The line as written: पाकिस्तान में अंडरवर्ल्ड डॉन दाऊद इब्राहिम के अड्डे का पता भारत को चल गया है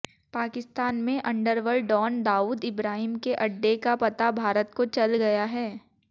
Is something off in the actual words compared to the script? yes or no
no